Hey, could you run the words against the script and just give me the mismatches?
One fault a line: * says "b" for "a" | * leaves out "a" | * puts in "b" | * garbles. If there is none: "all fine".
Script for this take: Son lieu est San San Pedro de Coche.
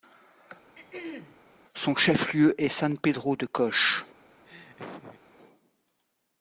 * puts in "chef"
* leaves out "San"